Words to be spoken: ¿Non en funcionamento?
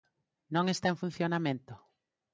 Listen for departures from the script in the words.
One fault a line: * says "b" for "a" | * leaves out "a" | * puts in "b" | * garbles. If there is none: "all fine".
* puts in "está"